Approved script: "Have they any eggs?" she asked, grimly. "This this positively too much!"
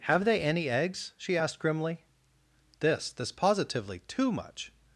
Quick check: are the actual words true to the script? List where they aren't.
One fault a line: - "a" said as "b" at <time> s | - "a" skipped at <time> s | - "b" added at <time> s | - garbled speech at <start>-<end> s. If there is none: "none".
none